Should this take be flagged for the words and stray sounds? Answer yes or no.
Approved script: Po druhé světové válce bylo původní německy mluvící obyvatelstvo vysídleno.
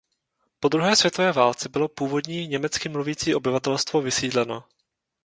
no